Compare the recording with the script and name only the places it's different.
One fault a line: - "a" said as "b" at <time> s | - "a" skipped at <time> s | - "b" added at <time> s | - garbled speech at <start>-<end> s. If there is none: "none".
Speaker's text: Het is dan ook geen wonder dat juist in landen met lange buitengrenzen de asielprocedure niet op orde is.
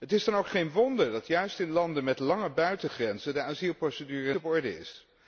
- "niet" skipped at 4.3 s